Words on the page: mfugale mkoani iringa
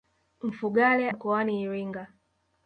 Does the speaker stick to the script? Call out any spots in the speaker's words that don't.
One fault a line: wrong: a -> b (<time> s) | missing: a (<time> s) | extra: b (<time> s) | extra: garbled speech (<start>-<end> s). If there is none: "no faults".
no faults